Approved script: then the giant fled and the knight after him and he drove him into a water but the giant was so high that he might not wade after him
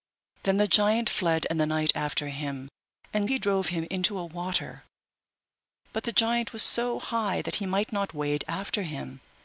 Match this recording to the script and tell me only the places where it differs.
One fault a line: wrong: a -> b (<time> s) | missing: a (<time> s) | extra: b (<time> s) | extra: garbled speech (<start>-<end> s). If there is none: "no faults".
no faults